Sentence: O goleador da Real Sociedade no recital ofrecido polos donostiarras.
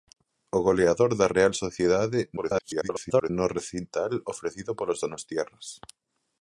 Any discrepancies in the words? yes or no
yes